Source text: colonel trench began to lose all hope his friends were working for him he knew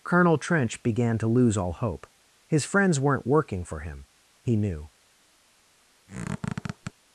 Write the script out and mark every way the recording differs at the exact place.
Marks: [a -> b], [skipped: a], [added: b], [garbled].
colonel trench began to lose all hope his friends [were -> weren't] working for him he knew